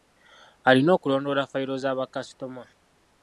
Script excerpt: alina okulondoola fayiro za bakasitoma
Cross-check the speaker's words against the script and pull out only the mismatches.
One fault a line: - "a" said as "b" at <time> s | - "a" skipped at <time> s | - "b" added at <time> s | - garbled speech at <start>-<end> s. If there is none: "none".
none